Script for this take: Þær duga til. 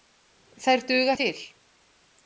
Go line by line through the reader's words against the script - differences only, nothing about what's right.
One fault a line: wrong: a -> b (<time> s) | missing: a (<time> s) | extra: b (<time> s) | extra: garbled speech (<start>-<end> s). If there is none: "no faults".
no faults